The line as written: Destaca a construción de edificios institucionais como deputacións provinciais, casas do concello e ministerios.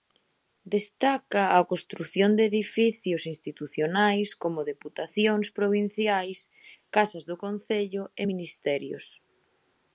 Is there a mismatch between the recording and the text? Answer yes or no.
no